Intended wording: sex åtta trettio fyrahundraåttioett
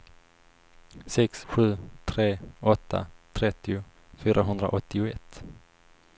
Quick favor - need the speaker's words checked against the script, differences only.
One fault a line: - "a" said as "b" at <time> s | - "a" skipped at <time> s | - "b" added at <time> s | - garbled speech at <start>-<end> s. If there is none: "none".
- "sju tre" added at 1.4 s